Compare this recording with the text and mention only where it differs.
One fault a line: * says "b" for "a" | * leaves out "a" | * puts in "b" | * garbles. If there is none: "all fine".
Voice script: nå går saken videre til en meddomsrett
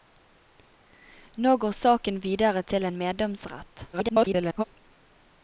* garbles